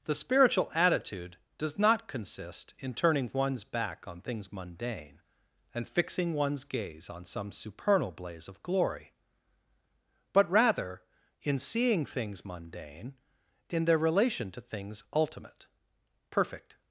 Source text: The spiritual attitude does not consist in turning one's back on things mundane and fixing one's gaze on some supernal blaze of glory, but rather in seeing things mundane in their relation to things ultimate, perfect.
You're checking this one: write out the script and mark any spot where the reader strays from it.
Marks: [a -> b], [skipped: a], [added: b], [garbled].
The spiritual attitude does not consist in turning one's back on things mundane and fixing one's gaze on some supernal blaze of glory, but rather in seeing things mundane in their relation to things ultimate, perfect.